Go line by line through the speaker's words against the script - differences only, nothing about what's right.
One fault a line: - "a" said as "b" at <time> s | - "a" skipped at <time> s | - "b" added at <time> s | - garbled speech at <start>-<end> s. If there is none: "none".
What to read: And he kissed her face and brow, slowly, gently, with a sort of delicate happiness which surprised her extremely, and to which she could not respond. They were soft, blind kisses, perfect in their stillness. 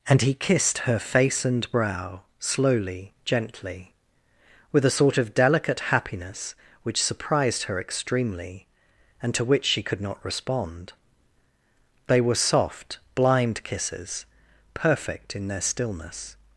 none